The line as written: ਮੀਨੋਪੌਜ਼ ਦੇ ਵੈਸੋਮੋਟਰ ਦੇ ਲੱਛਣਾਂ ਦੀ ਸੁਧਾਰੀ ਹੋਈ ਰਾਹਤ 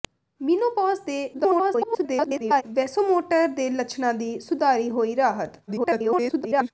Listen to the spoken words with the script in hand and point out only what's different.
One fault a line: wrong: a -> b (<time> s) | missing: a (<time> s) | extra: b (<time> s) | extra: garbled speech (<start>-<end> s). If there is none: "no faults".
extra: garbled speech (1.3-2.6 s)
extra: garbled speech (5.7-6.7 s)